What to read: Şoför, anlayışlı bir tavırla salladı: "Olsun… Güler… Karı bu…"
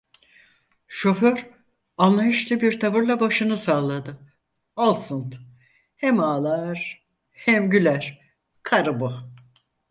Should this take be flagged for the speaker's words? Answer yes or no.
yes